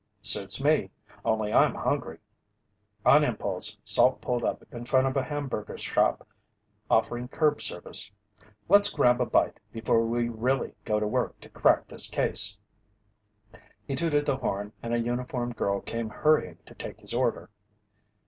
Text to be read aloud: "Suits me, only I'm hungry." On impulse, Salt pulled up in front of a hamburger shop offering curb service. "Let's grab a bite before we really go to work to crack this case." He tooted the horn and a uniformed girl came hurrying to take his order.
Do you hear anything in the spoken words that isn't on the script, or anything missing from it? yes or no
no